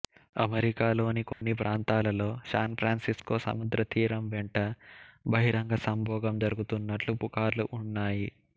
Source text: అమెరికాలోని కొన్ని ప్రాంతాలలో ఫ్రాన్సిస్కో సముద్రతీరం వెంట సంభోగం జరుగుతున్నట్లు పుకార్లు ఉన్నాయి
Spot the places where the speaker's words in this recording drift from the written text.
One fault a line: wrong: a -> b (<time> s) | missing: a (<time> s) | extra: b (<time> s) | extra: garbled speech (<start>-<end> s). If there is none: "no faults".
extra: శాన్ (2.5 s)
extra: బహిరంగ (5.3 s)